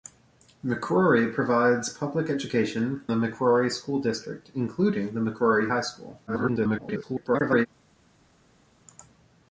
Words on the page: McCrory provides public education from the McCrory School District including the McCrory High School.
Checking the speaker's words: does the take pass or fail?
fail